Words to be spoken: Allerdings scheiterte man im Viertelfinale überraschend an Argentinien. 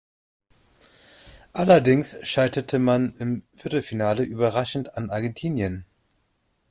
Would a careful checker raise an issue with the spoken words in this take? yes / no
no